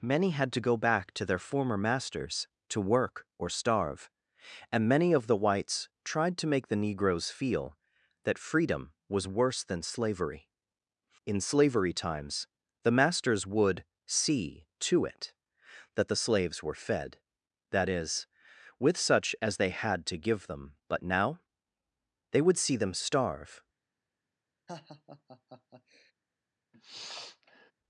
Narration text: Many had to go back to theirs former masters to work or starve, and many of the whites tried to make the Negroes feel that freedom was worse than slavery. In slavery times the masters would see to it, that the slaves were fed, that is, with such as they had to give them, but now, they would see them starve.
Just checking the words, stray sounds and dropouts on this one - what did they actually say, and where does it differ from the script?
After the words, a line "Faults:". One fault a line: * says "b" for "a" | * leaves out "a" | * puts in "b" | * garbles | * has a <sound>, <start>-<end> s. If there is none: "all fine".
Many had to go back to their former masters to work or starve, and many of the whites tried to make the Negroes feel that freedom was worse than slavery. In slavery times the masters would see to it, that the slaves were fed, that is, with such as they had to give them, but now, they would see them starve.
Faults:
* says "their" for "theirs"
* has a laugh, 24.7-26.1 s
* has a sniff, 26.7-27.7 s